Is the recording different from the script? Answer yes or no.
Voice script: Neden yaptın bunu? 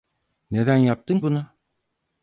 no